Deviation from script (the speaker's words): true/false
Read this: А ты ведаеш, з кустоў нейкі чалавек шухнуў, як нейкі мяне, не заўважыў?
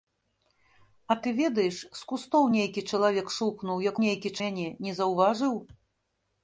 false